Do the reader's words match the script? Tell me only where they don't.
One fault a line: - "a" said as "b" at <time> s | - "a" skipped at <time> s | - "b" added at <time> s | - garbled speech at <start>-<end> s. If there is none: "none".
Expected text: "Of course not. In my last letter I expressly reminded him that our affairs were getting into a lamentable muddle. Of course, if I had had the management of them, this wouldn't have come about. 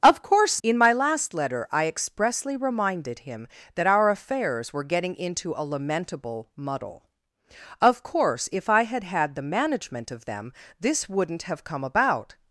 - "not" skipped at 0.6 s